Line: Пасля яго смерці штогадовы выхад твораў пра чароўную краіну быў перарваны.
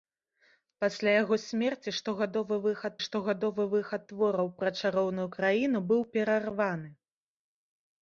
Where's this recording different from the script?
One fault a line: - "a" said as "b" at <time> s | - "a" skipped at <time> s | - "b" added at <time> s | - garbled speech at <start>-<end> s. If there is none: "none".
- "штогадовы выхад" added at 3.0 s